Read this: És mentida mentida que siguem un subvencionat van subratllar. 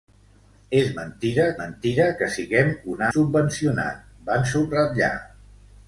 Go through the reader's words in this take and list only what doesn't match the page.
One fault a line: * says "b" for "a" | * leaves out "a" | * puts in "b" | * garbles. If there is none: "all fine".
all fine